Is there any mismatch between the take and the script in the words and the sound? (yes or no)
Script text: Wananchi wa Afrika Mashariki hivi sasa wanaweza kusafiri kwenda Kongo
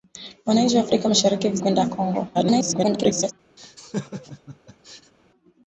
yes